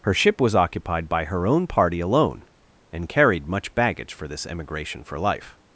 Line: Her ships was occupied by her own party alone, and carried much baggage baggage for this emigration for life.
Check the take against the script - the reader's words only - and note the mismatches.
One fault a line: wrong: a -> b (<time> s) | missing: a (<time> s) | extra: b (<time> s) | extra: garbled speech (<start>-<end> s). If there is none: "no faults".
wrong: ships -> ship (0.1 s)
missing: baggage (4.1 s)